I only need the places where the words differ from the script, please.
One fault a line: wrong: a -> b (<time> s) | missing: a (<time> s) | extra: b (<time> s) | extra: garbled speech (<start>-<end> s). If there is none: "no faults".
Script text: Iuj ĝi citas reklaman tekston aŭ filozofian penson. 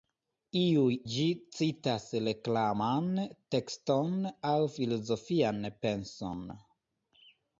no faults